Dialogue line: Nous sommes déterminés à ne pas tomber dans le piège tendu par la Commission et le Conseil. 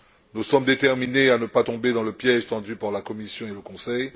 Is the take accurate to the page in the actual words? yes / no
yes